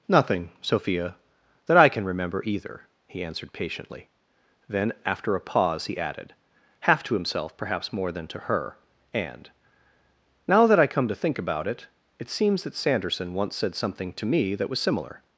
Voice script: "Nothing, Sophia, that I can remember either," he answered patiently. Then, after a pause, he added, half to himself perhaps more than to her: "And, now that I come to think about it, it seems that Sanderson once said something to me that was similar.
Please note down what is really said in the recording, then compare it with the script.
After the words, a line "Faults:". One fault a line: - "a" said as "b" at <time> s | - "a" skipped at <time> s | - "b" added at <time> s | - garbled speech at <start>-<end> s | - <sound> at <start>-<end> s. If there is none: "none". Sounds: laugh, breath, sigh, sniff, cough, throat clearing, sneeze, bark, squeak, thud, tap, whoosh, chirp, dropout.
"Nothing, Sophia, that I can remember either," he answered patiently. Then, after a pause, he added, half to himself perhaps more than to her: "And, now that I come to think about it, it seems that Sanderson once said something to me that was similar.
Faults:
none